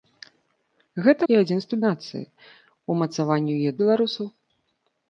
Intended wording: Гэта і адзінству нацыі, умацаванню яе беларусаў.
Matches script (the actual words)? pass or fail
pass